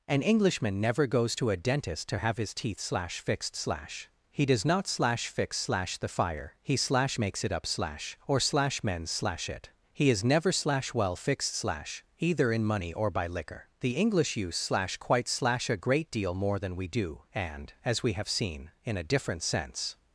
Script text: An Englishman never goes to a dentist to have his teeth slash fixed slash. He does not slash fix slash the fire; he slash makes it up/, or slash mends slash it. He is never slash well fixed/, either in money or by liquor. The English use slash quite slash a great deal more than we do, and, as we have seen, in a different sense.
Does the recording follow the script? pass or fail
fail